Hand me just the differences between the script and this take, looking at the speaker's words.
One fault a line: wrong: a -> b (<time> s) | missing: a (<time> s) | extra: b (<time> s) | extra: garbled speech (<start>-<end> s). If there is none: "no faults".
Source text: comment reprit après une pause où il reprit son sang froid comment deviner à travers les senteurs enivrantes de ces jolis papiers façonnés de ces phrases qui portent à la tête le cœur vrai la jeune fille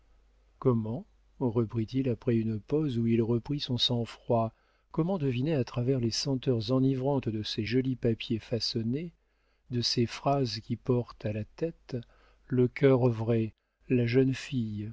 extra: il (1.9 s)